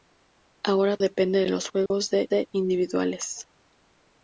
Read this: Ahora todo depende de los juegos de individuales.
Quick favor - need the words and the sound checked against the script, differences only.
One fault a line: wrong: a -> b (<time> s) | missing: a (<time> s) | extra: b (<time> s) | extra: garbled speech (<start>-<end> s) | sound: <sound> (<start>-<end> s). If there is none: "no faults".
missing: todo (1.0 s)
sound: dropout (1.9-1.9 s)
extra: de (2.3 s)